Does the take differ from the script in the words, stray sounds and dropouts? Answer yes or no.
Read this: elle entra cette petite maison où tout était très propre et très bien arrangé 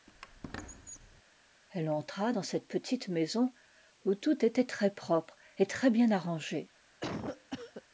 yes